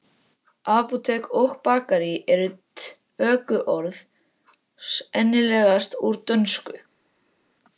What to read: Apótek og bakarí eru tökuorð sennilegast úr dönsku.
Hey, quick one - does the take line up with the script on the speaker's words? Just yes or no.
yes